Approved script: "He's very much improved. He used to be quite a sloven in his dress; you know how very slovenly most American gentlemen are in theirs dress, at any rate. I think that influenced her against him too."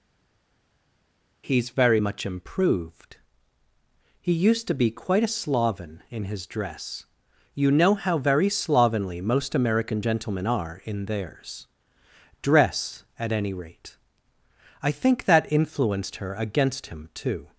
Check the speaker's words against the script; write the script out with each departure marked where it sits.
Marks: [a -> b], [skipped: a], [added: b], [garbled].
"He's very much improved. He used to be quite a sloven in his dress; you know how very slovenly most American gentlemen are in theirs dress, at any rate. I think that influenced her against him too."